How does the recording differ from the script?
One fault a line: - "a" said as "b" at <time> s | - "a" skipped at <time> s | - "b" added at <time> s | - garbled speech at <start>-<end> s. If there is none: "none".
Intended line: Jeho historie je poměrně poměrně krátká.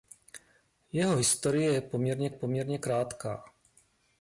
none